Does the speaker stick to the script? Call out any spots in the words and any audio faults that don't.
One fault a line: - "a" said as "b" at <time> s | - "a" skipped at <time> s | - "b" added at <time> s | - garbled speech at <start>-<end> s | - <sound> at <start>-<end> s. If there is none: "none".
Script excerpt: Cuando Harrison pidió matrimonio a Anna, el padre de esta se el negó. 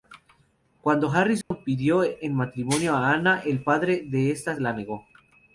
- dropout at 1.4-1.5 s
- "en" added at 2.0 s
- "el" said as "la" at 4.6 s